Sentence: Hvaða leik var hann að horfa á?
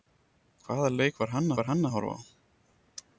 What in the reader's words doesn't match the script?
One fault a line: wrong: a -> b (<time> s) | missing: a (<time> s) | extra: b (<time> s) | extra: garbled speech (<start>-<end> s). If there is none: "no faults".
extra: var hann (1.6 s)